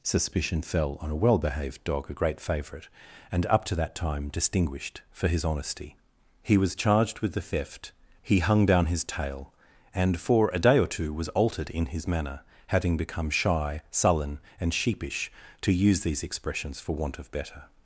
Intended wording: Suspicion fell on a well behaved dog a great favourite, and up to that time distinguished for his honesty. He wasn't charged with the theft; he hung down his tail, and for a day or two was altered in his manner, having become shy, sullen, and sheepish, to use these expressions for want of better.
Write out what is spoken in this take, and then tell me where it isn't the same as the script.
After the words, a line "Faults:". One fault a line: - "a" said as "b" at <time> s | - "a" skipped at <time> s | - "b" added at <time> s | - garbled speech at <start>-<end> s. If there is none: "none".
Suspicion fell on a well behaved dog a great favourite, and up to that time distinguished for his honesty. He was charged with the theft; he hung down his tail, and for a day or two was altered in his manner, having become shy, sullen, and sheepish, to use these expressions for want of better.
Faults:
- "wasn't" said as "was" at 6.6 s